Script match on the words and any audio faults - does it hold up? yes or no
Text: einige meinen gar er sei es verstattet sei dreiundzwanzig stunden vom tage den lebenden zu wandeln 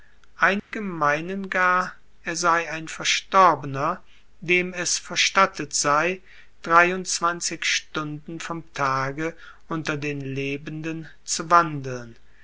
no